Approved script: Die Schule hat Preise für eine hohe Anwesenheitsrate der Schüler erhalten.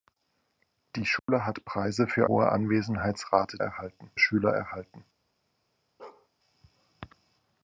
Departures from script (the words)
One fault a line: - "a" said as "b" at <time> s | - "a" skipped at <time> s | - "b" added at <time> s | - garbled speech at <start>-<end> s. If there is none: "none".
- "eine" skipped at 2.3 s
- "der" said as "erhalten" at 3.6 s